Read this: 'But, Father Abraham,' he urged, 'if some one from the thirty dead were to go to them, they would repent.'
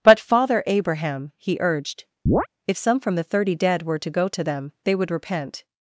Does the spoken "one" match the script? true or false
false